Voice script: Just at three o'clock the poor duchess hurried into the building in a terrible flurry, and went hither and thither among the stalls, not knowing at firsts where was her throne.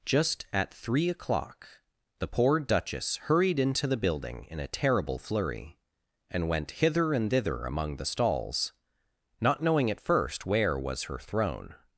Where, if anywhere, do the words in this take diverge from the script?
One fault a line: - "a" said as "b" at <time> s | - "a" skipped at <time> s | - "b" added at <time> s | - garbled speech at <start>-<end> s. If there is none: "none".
- "firsts" said as "first" at 10.0 s